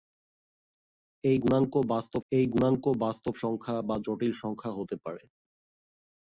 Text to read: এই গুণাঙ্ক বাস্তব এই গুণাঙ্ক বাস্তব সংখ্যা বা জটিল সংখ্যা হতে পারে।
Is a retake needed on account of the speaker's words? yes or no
no